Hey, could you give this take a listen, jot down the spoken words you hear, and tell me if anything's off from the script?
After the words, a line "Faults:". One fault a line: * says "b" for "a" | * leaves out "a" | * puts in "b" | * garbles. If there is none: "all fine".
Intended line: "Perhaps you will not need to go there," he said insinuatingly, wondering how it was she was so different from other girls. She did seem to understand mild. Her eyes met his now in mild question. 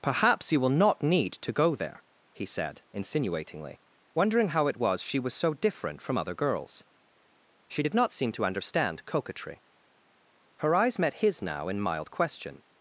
"Perhaps you will not need to go there," he said insinuatingly, wondering how it was she was so different from other girls. She did not seem to understand coquetry. Her eyes met his now in mild question.
Faults:
* puts in "not"
* says "coquetry" for "mild"